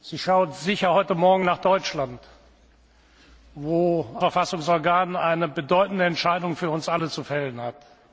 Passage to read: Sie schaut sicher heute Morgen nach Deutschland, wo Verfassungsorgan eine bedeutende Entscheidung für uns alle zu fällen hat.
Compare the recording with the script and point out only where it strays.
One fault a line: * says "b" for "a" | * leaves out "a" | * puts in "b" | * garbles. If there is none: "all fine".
all fine